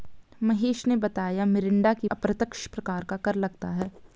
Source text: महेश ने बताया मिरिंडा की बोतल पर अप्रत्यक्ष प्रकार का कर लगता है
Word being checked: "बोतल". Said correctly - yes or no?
no